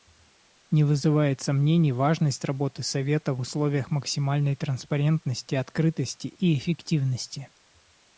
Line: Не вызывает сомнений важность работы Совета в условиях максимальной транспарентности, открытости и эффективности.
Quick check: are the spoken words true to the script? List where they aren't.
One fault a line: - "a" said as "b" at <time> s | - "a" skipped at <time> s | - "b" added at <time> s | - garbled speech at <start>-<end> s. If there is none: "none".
none